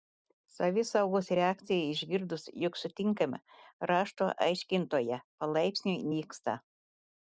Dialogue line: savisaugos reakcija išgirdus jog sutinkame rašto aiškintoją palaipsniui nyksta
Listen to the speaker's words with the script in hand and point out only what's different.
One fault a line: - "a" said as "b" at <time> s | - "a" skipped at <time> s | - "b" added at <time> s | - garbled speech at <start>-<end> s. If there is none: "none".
none